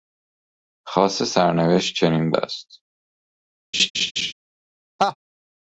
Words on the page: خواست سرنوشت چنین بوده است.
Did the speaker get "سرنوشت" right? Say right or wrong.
right